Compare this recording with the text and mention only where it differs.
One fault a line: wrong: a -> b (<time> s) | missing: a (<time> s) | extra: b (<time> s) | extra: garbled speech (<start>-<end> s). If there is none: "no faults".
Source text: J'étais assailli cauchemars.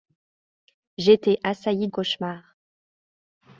no faults